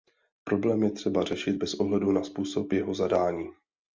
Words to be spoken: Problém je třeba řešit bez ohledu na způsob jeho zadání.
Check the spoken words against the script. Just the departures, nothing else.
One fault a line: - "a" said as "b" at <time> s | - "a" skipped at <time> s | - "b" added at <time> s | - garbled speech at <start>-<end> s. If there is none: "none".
none